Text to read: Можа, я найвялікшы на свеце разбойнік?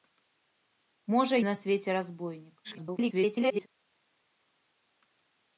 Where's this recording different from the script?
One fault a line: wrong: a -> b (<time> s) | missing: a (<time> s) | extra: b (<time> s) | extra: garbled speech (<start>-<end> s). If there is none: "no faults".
missing: я найвялікшы (1.4 s)
extra: garbled speech (2.6-3.7 s)